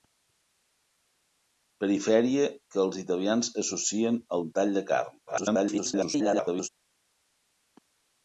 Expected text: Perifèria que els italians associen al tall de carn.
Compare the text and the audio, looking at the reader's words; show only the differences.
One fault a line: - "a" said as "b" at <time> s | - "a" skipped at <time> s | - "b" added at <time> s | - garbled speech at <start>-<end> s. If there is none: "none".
- garbled speech at 5.3-6.7 s